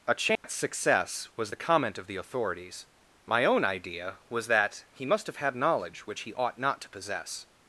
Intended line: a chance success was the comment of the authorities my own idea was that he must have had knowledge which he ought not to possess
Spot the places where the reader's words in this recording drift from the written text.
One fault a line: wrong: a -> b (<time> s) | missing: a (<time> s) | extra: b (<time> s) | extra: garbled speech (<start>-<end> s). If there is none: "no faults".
no faults